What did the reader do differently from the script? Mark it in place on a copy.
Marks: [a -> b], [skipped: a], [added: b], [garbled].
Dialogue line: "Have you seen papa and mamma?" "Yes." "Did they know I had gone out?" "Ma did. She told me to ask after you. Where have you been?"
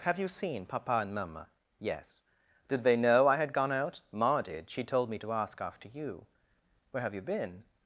"Have you seen papa and mamma?" "Yes." "Did they know I had gone out?" "Ma did. She told me to ask after you. Where have you been?"